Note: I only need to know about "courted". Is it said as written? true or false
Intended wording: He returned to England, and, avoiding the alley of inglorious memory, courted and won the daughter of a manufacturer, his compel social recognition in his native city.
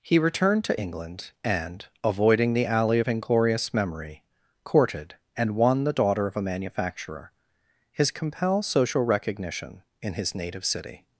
true